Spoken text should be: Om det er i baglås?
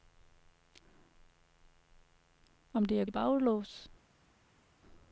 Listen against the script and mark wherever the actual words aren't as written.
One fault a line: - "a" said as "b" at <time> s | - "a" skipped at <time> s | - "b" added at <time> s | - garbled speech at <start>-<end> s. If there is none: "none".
none